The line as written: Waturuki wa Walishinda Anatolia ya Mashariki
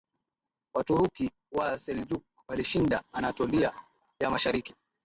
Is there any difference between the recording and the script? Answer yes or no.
yes